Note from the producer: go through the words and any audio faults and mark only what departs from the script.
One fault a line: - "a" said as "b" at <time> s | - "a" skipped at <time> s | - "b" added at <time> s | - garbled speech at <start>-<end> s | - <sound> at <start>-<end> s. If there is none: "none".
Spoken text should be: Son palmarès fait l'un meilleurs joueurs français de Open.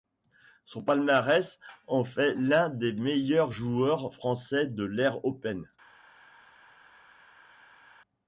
- "en" added at 1.9 s
- "des" added at 2.7 s
- "l'ère" added at 4.8 s